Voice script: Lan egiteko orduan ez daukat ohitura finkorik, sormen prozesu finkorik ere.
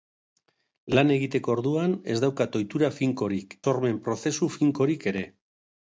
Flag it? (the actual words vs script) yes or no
no